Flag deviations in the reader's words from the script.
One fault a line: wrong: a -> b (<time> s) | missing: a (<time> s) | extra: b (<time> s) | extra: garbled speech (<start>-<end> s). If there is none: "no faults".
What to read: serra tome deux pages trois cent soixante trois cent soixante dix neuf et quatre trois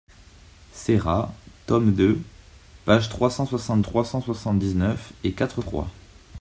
no faults